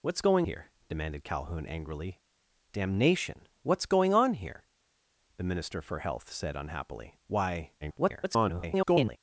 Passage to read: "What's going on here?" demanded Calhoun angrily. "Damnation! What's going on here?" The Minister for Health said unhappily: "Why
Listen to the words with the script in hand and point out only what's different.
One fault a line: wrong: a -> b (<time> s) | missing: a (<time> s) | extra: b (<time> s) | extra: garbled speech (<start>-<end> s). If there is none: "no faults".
missing: on (0.5 s)
extra: garbled speech (7.8-9.2 s)